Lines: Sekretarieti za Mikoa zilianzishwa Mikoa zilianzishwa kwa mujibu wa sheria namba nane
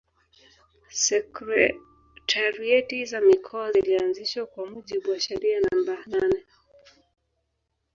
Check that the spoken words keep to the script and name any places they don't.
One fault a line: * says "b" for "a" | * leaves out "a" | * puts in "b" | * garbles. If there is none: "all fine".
* leaves out "Mikoa zilianzishwa"